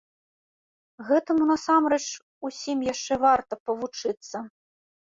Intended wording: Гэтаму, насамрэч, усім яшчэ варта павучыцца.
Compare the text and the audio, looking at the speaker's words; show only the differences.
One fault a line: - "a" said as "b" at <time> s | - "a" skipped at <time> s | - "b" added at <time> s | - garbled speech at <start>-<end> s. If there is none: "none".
none